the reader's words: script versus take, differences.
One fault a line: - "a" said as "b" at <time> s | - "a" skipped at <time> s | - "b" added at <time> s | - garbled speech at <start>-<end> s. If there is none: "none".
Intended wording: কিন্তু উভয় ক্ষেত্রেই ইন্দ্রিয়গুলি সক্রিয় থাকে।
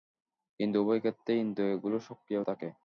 none